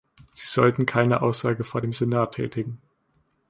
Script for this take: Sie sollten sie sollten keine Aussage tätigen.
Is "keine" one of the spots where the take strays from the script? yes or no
yes